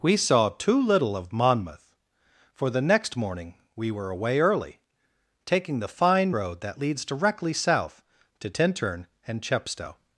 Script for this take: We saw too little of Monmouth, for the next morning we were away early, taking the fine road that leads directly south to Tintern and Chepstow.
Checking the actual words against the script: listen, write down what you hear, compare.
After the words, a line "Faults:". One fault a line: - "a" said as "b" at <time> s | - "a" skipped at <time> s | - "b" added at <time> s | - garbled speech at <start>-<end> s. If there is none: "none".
We saw too little of Monmouth, for the next morning we were away early, taking the fine road that leads directly south to Tintern and Chepstow.
Faults:
none